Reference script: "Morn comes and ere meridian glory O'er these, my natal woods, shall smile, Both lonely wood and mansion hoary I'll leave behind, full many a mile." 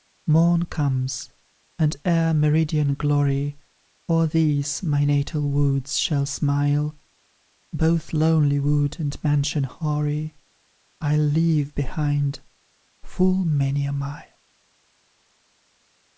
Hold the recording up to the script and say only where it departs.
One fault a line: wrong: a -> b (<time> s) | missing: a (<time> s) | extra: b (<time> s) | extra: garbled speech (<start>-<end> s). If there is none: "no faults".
no faults